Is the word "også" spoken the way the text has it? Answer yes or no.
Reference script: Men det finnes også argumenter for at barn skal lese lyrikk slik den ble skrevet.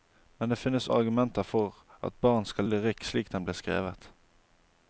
no